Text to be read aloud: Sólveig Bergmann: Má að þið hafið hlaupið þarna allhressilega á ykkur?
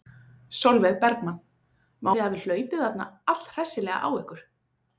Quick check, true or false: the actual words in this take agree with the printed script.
true